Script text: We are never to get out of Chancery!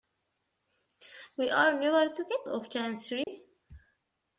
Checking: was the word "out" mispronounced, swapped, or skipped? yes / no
yes